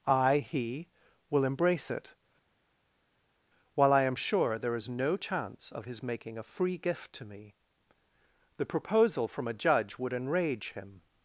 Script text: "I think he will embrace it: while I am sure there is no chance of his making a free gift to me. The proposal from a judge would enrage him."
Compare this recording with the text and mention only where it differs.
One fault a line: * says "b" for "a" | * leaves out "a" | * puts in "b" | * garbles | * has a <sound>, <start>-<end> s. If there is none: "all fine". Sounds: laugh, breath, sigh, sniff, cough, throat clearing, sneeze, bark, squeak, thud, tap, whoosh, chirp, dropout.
* leaves out "think"